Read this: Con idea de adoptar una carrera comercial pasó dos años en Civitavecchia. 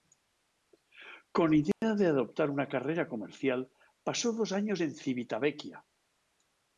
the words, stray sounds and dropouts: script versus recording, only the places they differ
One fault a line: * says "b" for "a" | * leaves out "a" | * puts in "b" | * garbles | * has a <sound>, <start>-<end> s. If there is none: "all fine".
* has a dropout, 1.7-1.8 s